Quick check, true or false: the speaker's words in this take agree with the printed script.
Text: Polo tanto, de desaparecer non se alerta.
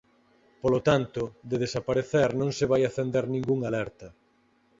false